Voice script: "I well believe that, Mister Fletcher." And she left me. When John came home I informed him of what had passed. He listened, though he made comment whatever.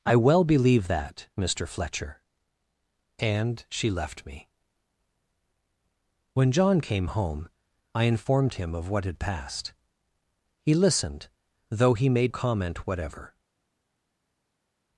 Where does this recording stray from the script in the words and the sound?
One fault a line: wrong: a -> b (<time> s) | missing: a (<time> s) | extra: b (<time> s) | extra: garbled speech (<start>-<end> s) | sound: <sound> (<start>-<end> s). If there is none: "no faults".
no faults